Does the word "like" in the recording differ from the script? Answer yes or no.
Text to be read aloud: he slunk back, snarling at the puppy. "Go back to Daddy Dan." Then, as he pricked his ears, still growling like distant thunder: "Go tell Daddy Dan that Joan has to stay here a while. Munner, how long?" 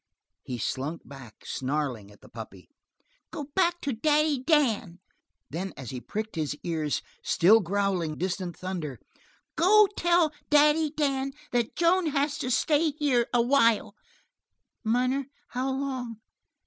yes